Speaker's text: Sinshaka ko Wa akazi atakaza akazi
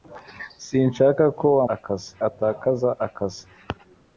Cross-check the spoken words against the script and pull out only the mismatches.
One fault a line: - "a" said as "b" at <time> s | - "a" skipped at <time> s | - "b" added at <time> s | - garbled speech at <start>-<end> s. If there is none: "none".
none